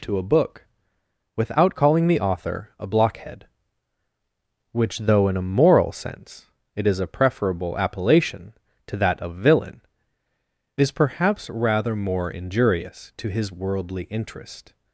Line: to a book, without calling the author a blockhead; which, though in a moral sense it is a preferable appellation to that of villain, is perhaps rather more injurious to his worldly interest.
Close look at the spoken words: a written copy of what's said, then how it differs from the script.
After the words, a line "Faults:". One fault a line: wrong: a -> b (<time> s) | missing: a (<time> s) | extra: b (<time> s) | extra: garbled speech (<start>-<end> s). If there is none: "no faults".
to a book, without calling the author a blockhead; which, though in a moral sense it is a preferable appellation to that of villain, is perhaps rather more injurious to his worldly interest.
Faults:
no faults